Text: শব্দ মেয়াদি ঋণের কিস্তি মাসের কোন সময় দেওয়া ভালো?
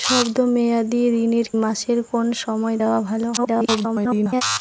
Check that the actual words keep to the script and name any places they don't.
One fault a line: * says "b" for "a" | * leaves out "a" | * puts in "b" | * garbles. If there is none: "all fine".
* leaves out "কিস্তি"
* garbles